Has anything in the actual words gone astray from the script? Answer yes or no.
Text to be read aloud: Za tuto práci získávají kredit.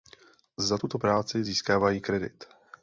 no